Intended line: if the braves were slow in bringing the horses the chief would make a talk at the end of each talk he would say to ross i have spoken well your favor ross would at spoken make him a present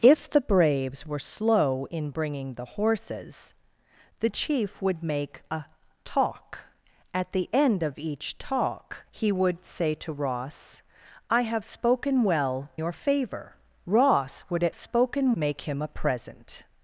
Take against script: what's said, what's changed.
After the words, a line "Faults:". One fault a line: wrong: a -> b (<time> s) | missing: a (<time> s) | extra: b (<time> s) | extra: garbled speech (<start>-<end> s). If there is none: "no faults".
if the braves were slow in bringing the horses the chief would make a talk at the end of each talk he would say to ross i have spoken well your favor ross would at spoken make him a present
Faults:
no faults